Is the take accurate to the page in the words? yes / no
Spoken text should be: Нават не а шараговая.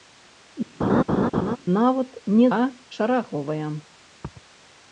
yes